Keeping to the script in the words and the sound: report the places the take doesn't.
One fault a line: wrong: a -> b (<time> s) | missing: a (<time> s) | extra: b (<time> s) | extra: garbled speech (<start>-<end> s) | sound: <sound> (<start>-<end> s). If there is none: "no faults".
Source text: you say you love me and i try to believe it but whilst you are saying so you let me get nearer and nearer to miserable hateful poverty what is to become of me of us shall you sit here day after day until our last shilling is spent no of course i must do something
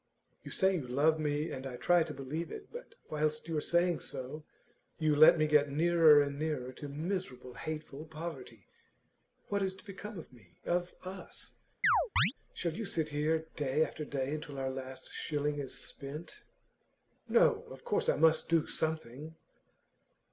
sound: chirp (11.8-12.3 s)